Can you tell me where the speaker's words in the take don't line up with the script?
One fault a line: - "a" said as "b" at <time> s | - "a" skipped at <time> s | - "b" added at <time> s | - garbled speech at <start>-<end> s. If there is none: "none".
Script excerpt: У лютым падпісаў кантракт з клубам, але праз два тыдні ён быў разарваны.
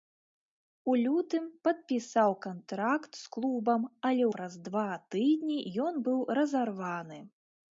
none